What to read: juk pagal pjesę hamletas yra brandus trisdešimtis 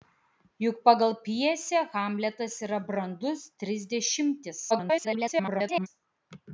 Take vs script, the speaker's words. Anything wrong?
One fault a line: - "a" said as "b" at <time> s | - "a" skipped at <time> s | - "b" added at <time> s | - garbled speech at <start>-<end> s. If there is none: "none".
- garbled speech at 4.7-5.9 s